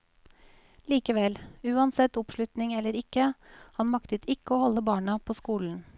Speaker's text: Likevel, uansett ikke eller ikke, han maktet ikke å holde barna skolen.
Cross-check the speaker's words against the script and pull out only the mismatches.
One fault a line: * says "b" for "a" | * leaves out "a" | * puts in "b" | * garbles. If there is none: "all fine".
* says "oppslutning" for "ikke"
* puts in "på"